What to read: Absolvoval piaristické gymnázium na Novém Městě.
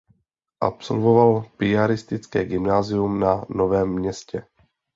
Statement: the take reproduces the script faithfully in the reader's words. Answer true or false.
true